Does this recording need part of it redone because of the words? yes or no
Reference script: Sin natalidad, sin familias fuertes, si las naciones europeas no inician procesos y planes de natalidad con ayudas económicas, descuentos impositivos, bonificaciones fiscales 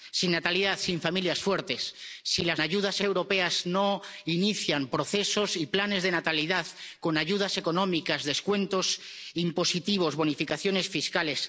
yes